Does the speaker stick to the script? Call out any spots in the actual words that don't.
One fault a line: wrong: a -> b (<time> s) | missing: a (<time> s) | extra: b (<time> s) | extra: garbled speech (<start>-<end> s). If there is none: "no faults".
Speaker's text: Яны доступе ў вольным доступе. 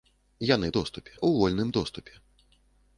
no faults